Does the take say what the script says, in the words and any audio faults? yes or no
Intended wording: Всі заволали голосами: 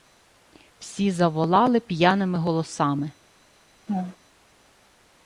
no